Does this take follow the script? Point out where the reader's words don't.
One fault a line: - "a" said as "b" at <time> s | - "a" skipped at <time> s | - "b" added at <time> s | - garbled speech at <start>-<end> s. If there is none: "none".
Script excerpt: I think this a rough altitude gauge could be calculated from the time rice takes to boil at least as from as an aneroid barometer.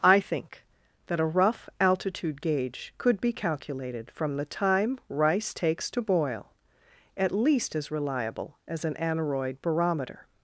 - "this" said as "that" at 1.1 s
- "from" said as "reliable" at 7.9 s